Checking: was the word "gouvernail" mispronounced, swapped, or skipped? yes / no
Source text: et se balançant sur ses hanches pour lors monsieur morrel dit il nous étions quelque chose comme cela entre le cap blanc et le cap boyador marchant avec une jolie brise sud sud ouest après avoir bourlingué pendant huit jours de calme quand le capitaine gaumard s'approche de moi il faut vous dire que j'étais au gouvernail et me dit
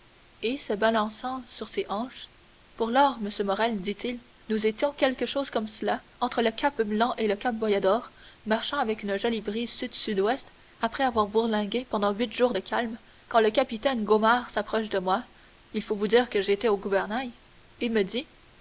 no